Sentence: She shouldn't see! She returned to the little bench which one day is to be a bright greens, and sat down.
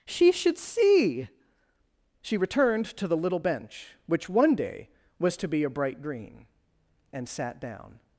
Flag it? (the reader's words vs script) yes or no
yes